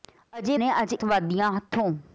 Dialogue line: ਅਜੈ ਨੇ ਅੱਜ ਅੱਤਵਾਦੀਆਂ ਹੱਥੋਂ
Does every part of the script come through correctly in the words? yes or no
yes